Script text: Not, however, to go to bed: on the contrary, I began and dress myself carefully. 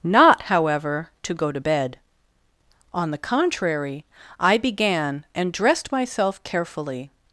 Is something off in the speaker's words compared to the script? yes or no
yes